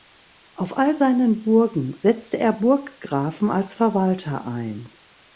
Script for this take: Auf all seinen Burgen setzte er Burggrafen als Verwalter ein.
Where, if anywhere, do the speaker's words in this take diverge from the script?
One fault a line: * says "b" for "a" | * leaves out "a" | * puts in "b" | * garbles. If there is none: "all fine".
all fine